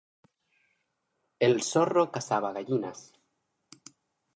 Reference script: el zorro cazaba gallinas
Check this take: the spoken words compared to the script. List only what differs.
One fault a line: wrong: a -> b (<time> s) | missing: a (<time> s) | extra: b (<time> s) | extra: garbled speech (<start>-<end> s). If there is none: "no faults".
no faults